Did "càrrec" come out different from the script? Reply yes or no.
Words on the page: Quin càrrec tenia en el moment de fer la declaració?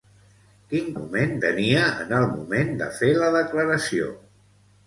yes